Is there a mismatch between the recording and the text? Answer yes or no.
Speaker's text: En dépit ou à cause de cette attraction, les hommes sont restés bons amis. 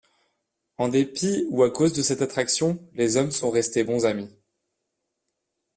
no